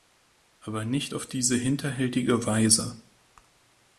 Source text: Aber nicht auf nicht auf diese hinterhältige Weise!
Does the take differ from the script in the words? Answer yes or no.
yes